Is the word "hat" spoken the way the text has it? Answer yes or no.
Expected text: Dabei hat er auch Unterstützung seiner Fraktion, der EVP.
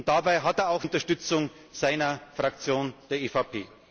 yes